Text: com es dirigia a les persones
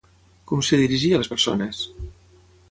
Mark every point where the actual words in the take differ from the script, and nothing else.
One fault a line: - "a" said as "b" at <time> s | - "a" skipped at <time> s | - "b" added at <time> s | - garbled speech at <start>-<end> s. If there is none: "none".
none